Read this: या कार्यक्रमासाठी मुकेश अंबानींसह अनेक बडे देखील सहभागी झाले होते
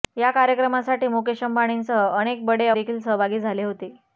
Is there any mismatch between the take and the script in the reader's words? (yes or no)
no